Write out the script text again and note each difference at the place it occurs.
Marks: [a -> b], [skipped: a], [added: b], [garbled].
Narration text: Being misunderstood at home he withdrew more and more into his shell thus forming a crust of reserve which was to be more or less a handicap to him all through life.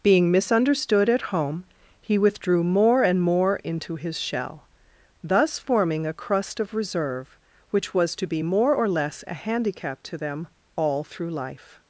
Being misunderstood at home he withdrew more and more into his shell thus forming a crust of reserve which was to be more or less a handicap to [him -> them] all through life.